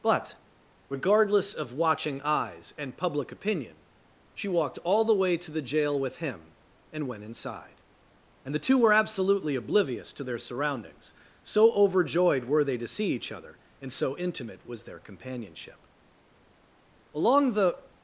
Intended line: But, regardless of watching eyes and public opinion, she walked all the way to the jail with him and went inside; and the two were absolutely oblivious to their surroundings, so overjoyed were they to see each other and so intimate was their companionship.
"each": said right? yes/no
yes